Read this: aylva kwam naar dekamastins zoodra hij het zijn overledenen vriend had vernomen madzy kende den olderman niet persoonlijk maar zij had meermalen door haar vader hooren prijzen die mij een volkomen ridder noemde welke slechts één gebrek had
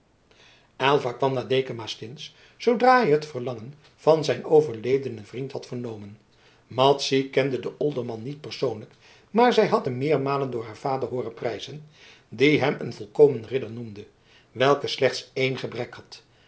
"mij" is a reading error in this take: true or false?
true